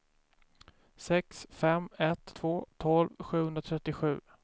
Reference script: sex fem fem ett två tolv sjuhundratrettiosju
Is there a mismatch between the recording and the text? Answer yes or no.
yes